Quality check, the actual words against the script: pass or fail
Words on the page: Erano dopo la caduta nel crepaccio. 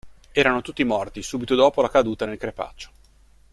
fail